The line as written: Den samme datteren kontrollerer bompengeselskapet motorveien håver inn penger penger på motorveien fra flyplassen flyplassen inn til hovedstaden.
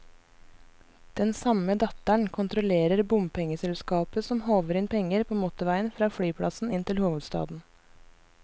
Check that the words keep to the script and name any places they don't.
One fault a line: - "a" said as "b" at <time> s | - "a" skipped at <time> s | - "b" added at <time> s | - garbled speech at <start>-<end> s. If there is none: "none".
- "motorveien" said as "som" at 4.3 s
- "penger" skipped at 5.3 s
- "flyplassen" skipped at 6.7 s